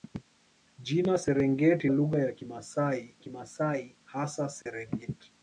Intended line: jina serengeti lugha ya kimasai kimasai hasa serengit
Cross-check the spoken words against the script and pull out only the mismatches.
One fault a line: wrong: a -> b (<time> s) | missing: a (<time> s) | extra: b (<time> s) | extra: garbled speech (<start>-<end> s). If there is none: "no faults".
no faults